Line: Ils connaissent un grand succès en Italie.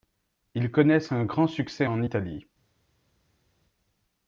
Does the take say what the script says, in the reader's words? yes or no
yes